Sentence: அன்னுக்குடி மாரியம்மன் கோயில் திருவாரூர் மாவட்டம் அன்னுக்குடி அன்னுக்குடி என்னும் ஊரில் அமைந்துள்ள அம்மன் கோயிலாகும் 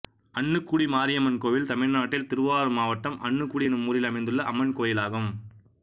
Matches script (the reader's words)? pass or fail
fail